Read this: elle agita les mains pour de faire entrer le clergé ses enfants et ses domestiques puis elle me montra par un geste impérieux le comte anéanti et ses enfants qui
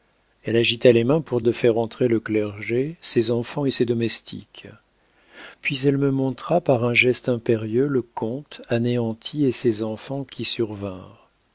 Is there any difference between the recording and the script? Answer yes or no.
no